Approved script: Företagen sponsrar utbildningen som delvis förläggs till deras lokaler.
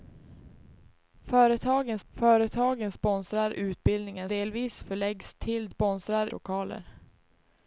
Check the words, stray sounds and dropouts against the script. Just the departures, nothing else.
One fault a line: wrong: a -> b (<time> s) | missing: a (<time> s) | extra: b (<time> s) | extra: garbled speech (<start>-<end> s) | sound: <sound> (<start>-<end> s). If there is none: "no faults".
extra: företagen (2.1 s)
missing: som (4.3 s)
wrong: deras -> sponsrar (5.7 s)